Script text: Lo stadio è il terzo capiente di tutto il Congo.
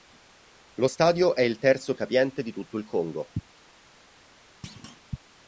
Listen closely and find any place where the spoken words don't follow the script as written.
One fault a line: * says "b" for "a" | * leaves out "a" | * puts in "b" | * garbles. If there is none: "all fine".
all fine